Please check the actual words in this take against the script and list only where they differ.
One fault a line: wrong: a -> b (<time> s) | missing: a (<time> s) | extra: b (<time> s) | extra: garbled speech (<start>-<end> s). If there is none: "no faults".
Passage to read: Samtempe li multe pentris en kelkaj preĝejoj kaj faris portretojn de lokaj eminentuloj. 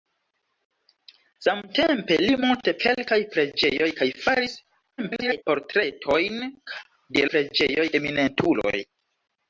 missing: pentris en (2.7 s)
extra: garbled speech (5.0-5.4 s)
wrong: lokaj -> preĝejoj (7.3 s)